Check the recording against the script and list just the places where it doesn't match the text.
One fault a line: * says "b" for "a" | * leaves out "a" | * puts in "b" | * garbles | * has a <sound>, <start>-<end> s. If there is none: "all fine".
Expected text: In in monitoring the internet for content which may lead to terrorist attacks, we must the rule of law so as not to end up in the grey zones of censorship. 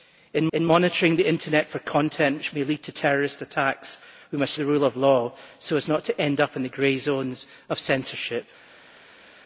all fine